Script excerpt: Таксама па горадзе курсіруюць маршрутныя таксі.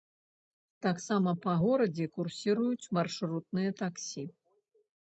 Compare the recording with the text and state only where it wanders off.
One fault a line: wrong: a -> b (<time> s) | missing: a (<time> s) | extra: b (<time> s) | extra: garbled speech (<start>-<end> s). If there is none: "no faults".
no faults